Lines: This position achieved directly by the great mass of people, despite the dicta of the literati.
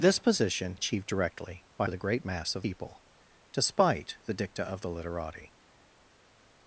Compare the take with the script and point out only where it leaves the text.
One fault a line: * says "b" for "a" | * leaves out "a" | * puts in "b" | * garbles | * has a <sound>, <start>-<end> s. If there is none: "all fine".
all fine